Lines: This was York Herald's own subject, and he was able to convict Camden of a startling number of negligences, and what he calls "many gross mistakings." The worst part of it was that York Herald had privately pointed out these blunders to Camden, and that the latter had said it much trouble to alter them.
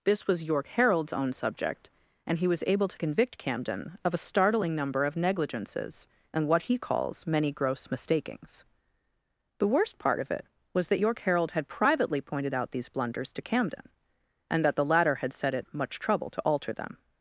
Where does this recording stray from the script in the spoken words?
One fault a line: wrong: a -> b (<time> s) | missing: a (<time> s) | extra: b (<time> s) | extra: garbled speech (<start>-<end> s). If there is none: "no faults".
no faults